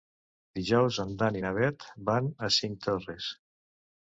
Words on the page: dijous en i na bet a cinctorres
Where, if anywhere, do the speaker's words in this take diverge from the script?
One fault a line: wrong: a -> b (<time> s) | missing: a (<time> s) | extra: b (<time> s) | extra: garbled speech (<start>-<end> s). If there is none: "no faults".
extra: dan (1.2 s)
extra: van (2.1 s)